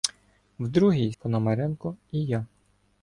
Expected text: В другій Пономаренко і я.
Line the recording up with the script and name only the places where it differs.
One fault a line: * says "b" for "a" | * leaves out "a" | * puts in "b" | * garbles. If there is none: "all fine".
all fine